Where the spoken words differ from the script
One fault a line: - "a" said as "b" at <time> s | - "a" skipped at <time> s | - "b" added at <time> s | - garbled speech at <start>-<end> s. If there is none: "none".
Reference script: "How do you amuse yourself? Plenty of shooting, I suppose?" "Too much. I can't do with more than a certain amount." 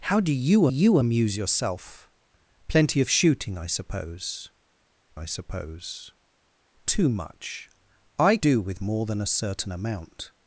- "you" added at 0.7 s
- "I suppose" added at 5.1 s
- "can't" skipped at 8.4 s